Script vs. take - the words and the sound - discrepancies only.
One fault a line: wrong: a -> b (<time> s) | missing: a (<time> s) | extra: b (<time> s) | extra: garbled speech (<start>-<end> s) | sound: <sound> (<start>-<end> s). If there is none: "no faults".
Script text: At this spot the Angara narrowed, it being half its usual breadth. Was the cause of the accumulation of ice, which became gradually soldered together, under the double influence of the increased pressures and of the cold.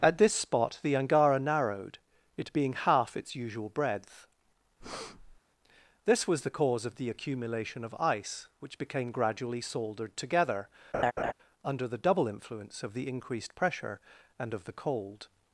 sound: breath (4.8-5.4 s)
extra: This (6.1 s)
sound: laugh (10.9-11.3 s)
wrong: pressures -> pressure (13.5 s)